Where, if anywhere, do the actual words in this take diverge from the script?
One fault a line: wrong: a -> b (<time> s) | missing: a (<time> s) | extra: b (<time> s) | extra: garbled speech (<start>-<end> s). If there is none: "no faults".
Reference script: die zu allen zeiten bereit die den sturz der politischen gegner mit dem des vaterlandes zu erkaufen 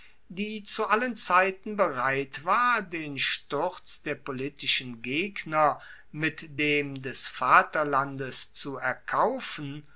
wrong: die -> war (2.5 s)